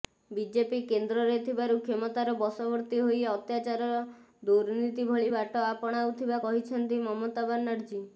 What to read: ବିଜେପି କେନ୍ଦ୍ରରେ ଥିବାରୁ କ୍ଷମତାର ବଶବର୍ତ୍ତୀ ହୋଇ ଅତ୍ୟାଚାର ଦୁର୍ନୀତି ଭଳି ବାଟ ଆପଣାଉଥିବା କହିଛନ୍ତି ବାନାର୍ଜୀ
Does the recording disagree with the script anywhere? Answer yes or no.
yes